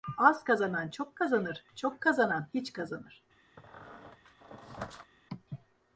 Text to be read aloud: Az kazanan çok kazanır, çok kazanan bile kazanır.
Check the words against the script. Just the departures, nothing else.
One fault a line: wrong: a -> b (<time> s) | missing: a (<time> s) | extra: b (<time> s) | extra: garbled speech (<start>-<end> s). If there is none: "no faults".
wrong: bile -> hiç (2.5 s)